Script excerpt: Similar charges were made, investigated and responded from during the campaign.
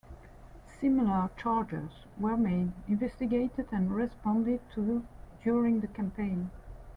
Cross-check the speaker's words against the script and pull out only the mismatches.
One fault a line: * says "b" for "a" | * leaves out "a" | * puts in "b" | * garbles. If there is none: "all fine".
* says "to" for "from"